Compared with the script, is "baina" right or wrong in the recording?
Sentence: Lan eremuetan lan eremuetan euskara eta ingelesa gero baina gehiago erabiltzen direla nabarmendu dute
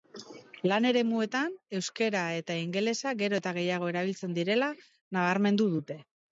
wrong